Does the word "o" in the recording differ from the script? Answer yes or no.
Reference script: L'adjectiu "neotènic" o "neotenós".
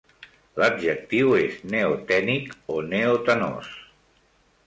no